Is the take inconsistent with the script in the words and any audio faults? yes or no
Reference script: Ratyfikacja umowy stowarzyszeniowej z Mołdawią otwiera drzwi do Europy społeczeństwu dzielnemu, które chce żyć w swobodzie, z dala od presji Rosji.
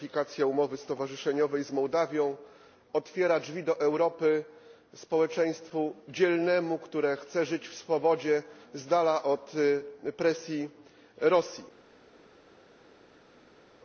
no